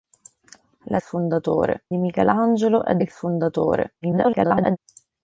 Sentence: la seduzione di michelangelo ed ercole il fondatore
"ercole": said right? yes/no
no